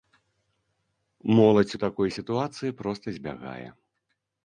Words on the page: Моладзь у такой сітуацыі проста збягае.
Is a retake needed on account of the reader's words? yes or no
no